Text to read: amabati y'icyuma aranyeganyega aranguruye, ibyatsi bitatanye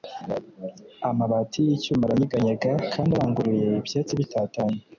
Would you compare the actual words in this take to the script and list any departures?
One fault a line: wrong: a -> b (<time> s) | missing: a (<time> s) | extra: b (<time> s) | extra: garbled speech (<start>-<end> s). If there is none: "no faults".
extra: kandi (2.9 s)